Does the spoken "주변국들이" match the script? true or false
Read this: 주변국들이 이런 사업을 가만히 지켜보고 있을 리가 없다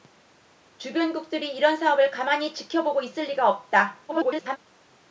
true